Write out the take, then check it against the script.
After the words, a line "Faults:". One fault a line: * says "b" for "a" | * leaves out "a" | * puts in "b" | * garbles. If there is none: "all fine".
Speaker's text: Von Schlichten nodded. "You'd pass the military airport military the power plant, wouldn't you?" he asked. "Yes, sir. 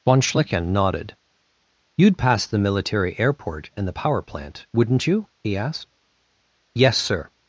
Von Schlichten nodded. "You'd pass the military airport and the power plant, wouldn't you?" he asked. "Yes, sir.
Faults:
* says "and" for "military"